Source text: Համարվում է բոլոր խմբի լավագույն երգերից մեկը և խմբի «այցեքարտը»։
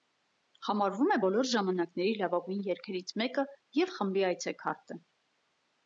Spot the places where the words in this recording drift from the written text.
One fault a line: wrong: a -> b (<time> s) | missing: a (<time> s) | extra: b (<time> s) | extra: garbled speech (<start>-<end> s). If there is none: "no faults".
wrong: խմբի -> ժամանակների (1.5 s)